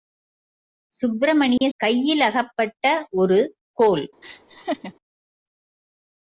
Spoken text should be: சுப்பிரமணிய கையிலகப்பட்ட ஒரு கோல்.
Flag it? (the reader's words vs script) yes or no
no